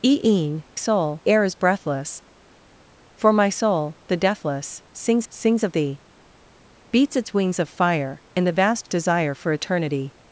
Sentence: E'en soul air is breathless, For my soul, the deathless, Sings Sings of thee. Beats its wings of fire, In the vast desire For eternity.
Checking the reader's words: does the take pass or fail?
pass